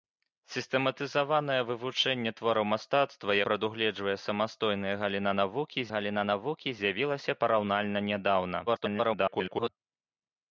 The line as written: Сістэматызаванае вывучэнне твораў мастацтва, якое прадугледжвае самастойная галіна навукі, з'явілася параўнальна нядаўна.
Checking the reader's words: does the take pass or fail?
fail